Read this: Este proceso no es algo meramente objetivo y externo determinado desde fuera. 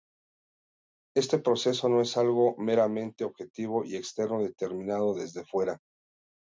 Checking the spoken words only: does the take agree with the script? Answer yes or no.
yes